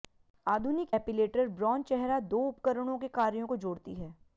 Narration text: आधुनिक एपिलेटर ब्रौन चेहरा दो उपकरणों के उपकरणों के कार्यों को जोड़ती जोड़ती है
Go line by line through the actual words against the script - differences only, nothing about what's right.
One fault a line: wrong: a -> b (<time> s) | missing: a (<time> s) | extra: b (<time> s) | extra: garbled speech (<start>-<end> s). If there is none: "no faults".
missing: उपकरणों के (3.1 s)
missing: जोड़ती (3.9 s)